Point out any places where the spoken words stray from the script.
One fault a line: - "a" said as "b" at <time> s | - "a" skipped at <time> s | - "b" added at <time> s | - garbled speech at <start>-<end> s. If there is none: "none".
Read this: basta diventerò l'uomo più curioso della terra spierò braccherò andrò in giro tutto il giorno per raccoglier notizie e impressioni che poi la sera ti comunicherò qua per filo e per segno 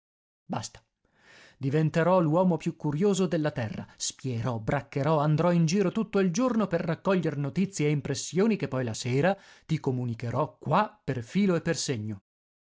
none